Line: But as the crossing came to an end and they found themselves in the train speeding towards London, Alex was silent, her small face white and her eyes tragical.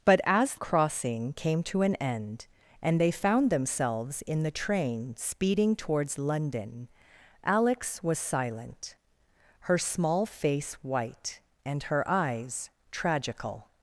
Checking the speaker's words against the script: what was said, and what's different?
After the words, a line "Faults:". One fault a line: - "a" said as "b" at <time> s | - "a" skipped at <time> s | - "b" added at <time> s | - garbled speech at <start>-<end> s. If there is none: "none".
But as crossing came to an end and they found themselves in the train speeding towards London, Alex was silent, her small face white and her eyes tragical.
Faults:
- "the" skipped at 0.6 s